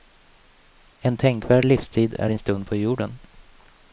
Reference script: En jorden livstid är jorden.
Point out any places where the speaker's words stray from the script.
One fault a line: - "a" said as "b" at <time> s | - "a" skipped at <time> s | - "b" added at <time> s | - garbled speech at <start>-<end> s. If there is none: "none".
- "jorden" said as "tänkvärd" at 1.2 s
- "din stund på" added at 2.3 s